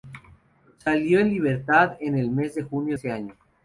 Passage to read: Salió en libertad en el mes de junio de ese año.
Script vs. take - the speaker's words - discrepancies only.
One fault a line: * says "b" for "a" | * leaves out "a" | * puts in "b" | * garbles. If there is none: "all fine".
* leaves out "de"